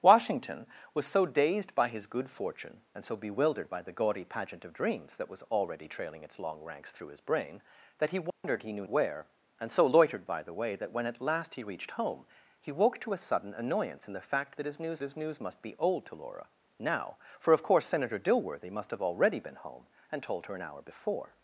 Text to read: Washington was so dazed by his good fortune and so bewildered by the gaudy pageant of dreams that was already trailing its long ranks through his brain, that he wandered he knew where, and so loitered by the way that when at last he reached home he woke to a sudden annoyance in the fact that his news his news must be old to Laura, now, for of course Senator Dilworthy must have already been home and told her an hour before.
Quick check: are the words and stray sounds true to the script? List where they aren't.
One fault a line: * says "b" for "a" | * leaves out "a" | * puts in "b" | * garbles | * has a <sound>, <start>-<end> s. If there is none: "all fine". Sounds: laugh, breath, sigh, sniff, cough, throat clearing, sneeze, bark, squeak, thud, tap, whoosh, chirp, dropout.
* has a dropout, 8.3-8.4 s